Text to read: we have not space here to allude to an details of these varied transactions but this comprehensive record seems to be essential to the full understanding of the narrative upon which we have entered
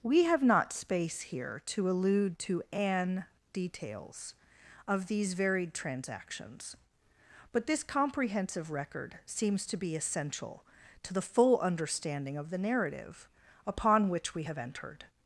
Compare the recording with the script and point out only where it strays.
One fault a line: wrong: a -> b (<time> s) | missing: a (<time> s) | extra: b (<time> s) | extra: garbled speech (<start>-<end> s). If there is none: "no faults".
no faults